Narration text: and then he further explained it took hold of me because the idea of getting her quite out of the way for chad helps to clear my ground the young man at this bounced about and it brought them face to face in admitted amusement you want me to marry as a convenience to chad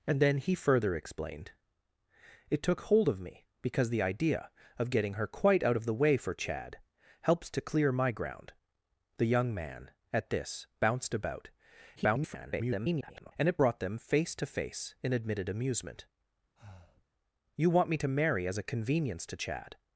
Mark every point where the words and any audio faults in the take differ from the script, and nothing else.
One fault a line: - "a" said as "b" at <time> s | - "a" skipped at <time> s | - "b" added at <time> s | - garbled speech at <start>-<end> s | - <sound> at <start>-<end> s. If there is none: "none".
- garbled speech at 12.0-13.3 s
- breath at 16.6-17.1 s